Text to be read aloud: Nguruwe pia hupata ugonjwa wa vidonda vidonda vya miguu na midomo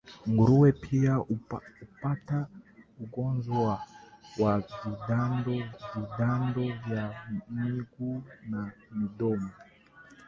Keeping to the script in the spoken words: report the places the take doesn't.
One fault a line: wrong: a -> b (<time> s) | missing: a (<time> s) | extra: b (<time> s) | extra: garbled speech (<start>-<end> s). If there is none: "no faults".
no faults